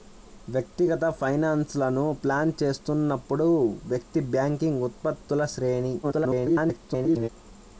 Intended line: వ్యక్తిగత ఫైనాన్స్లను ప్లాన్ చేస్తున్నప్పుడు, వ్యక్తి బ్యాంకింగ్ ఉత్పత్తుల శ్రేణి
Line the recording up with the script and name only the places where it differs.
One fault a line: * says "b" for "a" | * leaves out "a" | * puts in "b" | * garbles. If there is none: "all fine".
* garbles